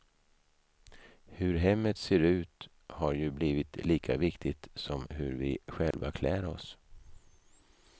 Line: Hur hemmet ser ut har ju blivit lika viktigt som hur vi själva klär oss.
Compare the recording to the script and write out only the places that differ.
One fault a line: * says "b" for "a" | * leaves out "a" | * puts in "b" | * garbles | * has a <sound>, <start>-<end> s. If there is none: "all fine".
* has a dropout, 5.9-5.9 s